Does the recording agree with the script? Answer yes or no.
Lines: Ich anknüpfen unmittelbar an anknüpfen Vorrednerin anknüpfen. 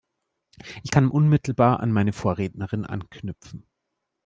no